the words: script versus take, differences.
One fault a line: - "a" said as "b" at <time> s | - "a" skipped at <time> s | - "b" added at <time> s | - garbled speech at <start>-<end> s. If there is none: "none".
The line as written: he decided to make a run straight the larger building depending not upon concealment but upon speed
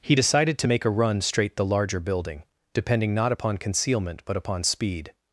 none